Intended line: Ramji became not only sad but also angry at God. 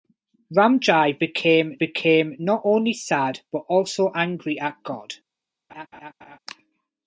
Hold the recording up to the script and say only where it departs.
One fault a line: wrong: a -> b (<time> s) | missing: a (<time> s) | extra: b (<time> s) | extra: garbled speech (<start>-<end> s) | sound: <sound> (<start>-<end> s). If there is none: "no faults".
extra: became (1.8 s)
sound: laugh (5.7-6.4 s)